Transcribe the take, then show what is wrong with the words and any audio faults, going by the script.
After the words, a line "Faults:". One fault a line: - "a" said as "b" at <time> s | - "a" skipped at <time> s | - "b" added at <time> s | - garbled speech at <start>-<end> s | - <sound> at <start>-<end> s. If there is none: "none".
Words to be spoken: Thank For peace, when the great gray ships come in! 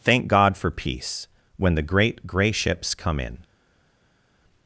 Thank God for peace, when the great gray ships come in!
Faults:
- "God" added at 0.3 s